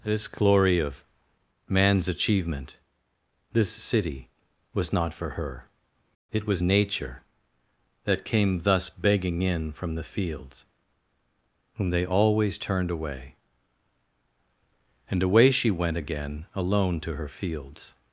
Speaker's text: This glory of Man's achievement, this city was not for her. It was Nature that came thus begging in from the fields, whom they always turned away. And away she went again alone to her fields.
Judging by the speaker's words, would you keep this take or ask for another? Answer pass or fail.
pass